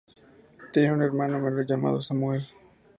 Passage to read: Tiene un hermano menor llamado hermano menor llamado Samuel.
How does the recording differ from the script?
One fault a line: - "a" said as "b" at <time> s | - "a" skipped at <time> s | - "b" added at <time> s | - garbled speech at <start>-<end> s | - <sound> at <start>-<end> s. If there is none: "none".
- "hermano menor llamado" skipped at 2.0 s